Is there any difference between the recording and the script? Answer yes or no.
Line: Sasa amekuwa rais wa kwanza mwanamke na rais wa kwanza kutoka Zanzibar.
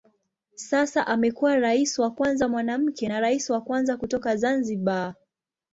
no